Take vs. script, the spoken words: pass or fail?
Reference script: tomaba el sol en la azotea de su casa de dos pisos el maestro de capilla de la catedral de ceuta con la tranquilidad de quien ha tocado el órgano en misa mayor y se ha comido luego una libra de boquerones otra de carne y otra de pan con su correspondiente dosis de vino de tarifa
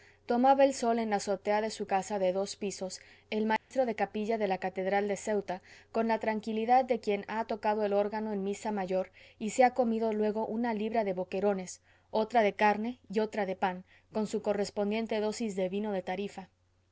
pass